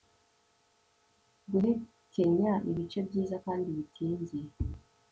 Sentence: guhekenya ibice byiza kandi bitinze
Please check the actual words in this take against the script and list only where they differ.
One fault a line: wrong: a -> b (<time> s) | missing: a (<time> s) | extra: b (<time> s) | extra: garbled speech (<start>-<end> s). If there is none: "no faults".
no faults